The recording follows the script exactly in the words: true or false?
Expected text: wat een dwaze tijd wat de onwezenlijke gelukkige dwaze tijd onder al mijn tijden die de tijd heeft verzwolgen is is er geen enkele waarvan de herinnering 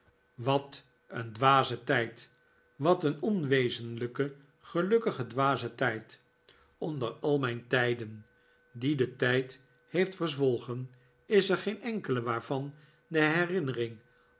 false